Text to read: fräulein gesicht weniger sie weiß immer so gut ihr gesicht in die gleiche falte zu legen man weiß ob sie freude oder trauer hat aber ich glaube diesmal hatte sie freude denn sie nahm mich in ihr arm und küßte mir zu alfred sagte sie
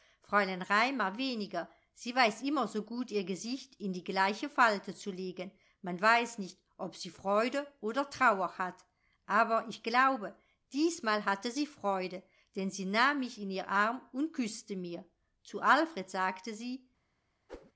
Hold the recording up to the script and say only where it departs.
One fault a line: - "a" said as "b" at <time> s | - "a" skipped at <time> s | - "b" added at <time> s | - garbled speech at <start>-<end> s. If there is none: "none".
- "gesicht" said as "raimar" at 0.6 s
- "nicht" added at 6.4 s